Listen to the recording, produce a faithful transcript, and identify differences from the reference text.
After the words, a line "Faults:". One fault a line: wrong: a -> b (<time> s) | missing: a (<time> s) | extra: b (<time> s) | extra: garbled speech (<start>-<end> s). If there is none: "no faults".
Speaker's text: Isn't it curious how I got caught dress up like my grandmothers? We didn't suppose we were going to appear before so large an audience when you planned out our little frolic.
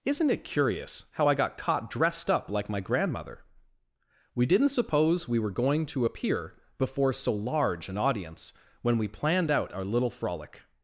Isn't it curious how I got caught dressed up like my grandmother? We didn't suppose we were going to appear before so large an audience when we planned out our little frolic.
Faults:
wrong: dress -> dressed (1.9 s)
wrong: grandmothers -> grandmother (2.8 s)
wrong: you -> we (9.0 s)